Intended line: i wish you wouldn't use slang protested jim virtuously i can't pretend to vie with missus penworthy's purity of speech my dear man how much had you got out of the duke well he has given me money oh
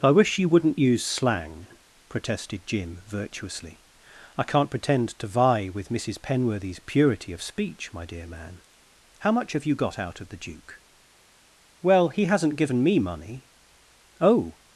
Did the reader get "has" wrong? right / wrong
wrong